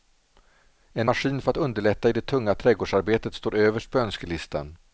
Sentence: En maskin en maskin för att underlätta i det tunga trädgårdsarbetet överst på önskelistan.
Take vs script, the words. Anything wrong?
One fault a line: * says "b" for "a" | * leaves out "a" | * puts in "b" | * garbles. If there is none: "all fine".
* leaves out "en maskin"
* puts in "står"